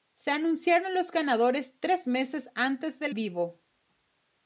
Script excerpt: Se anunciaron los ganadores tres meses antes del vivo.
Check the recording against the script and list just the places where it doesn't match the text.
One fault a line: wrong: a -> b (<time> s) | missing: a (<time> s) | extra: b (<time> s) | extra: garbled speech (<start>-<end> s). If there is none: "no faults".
no faults